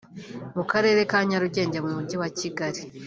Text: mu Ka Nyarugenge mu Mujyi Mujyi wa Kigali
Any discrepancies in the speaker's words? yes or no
yes